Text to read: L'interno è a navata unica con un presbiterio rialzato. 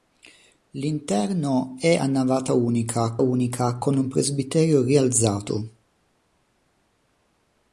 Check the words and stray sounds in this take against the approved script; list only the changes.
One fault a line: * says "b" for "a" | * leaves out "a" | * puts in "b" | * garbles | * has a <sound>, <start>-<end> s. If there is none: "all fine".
* puts in "unica"